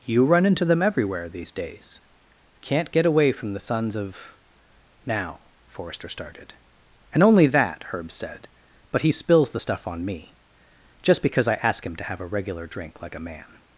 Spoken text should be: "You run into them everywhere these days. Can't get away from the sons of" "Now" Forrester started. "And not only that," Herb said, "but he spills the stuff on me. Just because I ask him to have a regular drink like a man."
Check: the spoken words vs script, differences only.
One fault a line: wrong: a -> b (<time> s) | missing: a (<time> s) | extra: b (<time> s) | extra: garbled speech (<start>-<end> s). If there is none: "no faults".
missing: not (7.2 s)